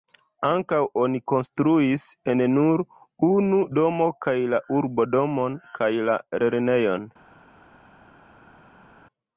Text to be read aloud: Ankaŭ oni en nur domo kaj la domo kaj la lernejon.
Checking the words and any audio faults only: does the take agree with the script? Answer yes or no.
no